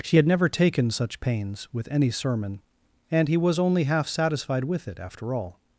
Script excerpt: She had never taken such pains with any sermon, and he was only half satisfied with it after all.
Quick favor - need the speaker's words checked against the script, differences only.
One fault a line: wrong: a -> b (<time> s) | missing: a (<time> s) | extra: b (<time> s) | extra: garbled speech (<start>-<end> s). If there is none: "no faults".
no faults